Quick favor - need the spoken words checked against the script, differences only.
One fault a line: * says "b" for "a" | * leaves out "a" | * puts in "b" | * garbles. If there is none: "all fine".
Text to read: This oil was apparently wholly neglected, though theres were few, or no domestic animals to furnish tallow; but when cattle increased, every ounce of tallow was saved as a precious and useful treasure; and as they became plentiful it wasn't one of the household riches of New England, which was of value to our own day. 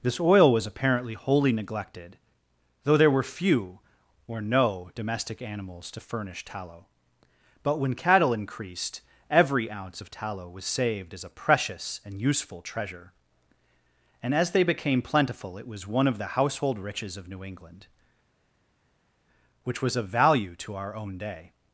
* says "there" for "theres"
* says "was" for "wasn't"